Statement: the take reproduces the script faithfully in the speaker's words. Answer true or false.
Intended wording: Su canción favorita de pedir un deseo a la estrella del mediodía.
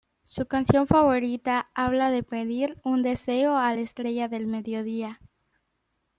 false